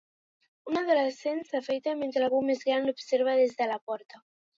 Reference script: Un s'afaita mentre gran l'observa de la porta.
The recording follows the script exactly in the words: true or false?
false